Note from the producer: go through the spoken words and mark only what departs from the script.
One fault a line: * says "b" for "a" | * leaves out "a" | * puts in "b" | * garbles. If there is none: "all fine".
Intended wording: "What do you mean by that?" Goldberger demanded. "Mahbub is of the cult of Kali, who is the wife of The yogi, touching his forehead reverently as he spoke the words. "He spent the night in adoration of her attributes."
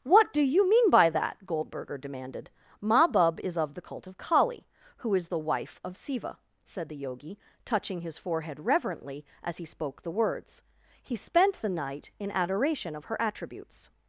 * puts in "Siva said"